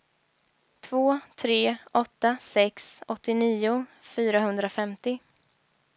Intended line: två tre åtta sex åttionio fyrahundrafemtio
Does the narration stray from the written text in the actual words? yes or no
no